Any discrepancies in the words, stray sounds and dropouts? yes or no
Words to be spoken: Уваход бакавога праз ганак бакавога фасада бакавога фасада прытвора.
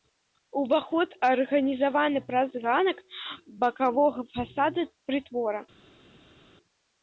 yes